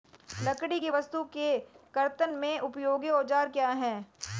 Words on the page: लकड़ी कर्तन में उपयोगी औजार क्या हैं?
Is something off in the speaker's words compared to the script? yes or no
yes